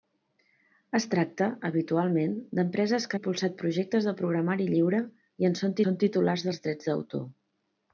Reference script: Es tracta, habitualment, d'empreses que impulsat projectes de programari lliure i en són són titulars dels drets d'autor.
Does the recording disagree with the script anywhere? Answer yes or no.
no